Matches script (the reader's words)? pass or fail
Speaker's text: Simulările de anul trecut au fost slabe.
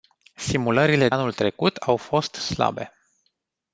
fail